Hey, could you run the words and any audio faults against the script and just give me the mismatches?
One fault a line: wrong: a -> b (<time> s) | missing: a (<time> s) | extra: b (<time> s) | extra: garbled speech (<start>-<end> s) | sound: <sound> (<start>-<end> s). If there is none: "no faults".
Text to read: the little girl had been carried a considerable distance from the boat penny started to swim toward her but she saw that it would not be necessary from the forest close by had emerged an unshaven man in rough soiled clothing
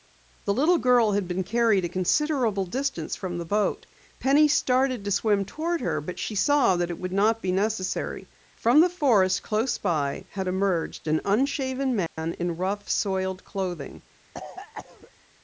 sound: dropout (12.1-12.2 s)
sound: cough (14.3-15.1 s)